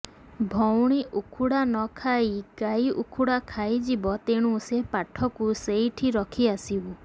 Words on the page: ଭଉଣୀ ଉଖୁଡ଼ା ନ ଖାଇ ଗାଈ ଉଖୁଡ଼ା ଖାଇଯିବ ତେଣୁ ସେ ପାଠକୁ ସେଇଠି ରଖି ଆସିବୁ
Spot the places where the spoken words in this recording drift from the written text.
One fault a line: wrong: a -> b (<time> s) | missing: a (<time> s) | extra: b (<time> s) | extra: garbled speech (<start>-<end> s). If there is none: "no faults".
no faults